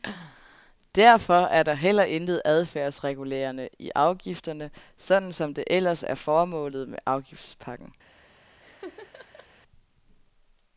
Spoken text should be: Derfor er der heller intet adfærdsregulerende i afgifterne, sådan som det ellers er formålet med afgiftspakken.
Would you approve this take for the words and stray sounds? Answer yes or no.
no